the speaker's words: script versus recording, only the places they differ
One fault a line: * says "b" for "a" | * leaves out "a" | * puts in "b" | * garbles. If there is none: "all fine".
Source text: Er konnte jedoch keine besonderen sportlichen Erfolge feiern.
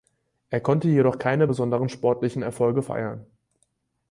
all fine